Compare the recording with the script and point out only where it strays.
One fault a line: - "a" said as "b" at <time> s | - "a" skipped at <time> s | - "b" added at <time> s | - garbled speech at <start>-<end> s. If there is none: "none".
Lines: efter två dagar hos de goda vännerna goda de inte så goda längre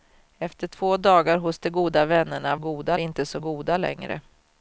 none